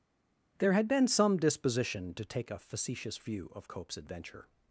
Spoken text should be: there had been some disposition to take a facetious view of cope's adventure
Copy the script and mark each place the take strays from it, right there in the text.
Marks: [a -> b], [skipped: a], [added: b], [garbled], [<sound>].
there had been some disposition to take a facetious view of cope's adventure